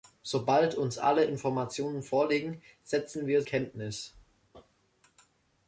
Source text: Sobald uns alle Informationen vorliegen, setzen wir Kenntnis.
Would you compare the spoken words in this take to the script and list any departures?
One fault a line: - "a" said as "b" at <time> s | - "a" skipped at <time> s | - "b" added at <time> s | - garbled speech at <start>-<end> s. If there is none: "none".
none